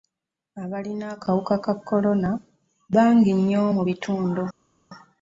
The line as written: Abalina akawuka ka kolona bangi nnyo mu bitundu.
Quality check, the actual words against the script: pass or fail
pass